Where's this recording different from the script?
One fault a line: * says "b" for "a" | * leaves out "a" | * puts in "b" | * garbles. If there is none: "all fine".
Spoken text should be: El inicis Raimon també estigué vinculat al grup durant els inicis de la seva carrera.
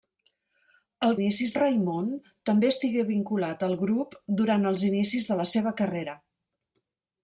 all fine